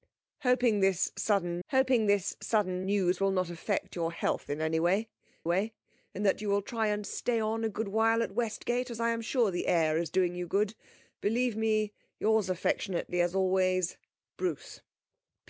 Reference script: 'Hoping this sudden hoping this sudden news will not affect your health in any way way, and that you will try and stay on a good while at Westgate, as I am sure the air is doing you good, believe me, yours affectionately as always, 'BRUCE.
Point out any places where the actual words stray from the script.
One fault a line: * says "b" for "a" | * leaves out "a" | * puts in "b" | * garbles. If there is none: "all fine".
all fine